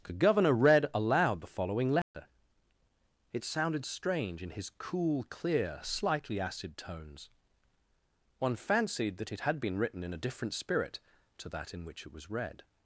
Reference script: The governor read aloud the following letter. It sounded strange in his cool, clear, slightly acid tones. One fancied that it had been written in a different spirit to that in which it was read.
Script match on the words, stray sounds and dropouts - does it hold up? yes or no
no